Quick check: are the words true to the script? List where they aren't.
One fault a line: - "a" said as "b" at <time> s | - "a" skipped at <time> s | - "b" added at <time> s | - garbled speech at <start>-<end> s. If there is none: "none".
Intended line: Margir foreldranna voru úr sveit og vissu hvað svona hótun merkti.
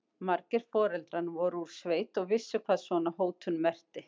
none